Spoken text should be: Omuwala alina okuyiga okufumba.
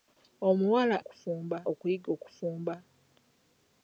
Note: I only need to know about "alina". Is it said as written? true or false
false